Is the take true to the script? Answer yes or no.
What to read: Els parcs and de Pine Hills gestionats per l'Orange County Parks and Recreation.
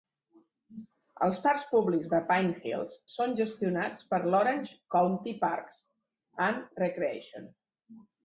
no